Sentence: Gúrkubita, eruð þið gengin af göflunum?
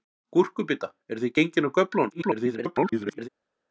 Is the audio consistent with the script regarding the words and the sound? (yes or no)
no